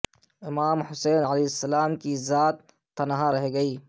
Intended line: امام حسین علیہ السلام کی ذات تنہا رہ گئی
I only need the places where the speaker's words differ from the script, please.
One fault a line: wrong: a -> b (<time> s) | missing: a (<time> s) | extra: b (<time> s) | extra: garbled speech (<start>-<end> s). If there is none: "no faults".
no faults